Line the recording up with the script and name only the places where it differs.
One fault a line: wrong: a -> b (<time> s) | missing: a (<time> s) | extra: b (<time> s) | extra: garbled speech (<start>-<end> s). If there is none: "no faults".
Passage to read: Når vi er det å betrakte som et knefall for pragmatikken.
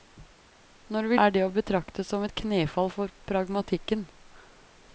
no faults